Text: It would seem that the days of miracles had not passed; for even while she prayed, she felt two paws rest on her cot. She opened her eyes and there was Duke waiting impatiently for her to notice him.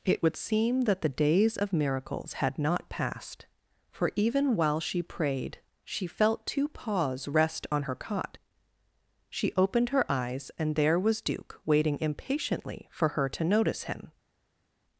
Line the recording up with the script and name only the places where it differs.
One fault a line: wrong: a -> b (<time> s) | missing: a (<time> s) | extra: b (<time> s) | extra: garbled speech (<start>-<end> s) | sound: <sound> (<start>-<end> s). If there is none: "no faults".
no faults